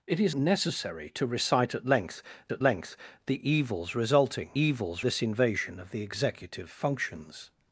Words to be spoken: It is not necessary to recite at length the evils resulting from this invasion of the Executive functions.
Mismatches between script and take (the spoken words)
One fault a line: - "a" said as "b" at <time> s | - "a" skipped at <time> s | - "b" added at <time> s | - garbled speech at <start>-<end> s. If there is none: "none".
- "not" skipped at 0.3 s
- "at length" added at 2.5 s
- "from" said as "evils" at 4.6 s